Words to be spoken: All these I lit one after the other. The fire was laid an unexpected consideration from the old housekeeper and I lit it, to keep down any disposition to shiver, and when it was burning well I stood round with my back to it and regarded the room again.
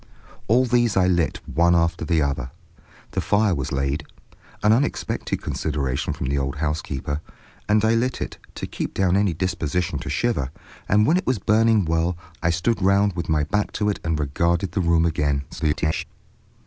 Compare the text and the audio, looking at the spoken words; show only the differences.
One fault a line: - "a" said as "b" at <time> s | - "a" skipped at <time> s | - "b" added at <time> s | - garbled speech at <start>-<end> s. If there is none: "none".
- garbled speech at 15.5-16.0 s